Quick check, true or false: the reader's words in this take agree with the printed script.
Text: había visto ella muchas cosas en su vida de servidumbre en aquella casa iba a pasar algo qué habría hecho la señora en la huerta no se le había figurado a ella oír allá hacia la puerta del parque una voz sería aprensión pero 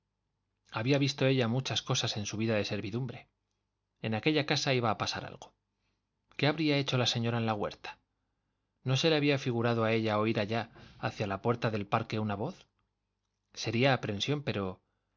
true